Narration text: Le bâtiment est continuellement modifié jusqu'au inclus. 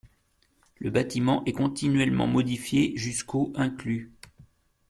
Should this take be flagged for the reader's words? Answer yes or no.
no